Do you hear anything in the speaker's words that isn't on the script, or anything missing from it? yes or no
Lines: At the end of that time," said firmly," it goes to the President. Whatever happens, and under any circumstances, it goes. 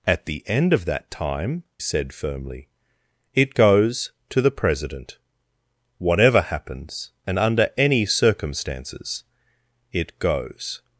no